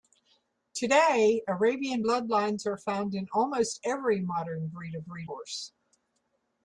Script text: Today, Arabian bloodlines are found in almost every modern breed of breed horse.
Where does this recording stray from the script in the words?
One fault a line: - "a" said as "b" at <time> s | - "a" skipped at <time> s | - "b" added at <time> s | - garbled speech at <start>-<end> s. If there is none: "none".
none